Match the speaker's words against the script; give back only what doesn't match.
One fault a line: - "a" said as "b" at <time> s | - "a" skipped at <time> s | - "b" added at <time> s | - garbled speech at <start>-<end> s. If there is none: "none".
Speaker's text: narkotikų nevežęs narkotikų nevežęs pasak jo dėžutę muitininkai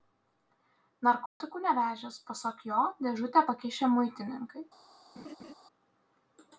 - "narkotikų nevežęs" skipped at 2.2 s
- "pakišę" added at 3.5 s